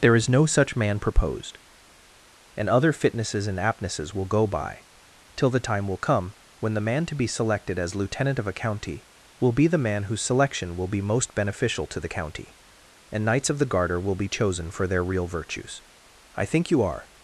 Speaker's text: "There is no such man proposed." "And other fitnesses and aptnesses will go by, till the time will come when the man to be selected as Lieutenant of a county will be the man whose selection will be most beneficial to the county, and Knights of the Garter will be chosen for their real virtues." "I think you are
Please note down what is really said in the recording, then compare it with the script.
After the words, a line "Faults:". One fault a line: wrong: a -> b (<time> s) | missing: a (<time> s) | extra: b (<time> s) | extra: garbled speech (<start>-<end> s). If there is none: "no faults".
"There is no such man proposed." "And other fitnesses and aptnesses will go by, till the time will come when the man to be selected as Lieutenant of a county will be the man whose selection will be most beneficial to the county, and Knights of the Garter will be chosen for their real virtues." "I think you are
Faults:
no faults